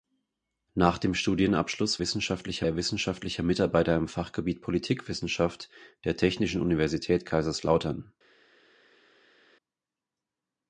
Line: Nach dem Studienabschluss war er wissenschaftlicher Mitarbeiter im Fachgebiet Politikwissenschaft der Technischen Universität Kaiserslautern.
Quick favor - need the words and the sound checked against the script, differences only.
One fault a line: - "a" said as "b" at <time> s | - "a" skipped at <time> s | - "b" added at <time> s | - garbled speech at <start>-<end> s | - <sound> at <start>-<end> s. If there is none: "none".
- "war" said as "wissenschaftlicher" at 2.0 s